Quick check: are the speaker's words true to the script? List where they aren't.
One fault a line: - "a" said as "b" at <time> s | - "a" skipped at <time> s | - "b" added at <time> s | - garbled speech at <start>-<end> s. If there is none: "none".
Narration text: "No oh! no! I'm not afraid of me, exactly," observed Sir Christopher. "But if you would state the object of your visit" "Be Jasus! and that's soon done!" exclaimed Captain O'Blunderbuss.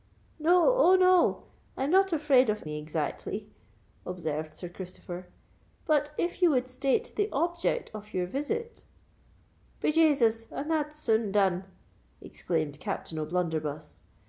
none